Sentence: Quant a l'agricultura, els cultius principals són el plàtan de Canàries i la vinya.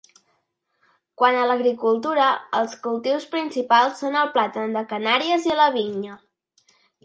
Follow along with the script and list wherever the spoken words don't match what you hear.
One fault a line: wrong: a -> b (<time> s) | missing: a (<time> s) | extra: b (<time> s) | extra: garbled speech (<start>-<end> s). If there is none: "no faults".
no faults